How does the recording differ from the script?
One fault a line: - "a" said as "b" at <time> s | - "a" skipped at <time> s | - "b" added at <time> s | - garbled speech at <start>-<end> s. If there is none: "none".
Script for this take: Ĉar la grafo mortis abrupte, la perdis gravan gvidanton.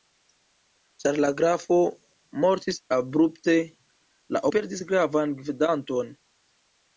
none